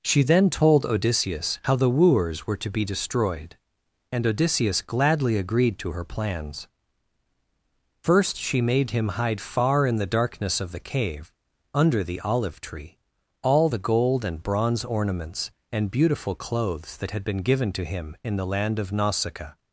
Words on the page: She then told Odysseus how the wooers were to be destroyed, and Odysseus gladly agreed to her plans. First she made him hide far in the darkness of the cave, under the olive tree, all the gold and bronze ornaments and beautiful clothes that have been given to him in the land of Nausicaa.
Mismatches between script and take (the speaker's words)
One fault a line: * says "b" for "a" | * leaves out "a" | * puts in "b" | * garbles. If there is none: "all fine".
* says "had" for "have"